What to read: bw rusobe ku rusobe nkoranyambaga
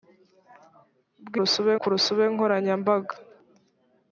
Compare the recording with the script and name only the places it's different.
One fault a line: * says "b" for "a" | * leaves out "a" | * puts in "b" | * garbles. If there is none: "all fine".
all fine